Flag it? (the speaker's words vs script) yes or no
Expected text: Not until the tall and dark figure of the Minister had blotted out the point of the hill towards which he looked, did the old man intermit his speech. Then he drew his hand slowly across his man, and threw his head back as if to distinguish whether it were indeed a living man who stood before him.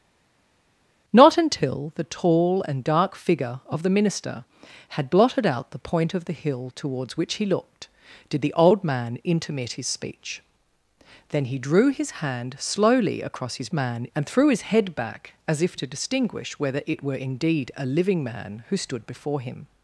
no